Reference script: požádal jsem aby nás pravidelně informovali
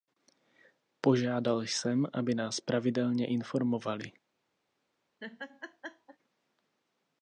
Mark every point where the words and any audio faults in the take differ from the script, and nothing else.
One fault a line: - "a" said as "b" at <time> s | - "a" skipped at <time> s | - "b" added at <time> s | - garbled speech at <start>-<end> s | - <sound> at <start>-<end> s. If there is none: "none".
- laugh at 5.2-6.2 s